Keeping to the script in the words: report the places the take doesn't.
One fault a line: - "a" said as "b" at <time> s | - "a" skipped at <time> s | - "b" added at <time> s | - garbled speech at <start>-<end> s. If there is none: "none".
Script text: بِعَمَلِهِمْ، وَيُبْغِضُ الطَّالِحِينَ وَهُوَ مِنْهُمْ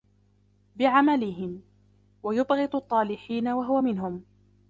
none